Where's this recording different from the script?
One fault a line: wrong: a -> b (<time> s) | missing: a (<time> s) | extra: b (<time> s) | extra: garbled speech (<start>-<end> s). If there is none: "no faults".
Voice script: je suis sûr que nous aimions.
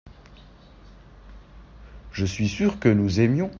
no faults